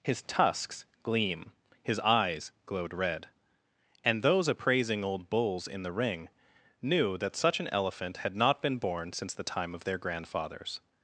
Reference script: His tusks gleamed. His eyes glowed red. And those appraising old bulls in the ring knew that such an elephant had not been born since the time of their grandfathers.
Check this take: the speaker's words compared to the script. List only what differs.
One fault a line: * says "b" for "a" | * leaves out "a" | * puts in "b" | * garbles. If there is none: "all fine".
* says "gleam" for "gleamed"